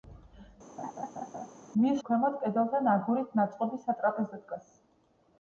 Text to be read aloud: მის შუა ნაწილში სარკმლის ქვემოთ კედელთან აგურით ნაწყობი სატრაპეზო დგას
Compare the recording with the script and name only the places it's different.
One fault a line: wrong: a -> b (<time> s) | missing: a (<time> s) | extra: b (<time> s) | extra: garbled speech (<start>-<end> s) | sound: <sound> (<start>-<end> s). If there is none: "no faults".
sound: laugh (0.8-1.5 s)
missing: შუა ნაწილში სარკმლის (2.0 s)